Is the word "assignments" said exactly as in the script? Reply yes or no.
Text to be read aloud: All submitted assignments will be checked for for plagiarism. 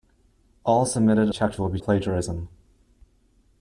no